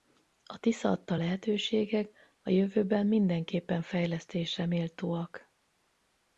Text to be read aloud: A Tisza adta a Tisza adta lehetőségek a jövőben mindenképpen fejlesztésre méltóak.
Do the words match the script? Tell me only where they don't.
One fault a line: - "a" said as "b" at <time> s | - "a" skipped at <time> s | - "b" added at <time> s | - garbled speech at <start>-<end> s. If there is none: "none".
- "a Tisza adta" skipped at 1.1 s